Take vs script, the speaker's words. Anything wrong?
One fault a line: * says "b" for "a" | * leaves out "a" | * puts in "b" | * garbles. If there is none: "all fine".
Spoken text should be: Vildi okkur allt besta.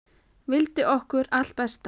all fine